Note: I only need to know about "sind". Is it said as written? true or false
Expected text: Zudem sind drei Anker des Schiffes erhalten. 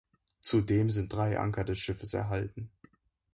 true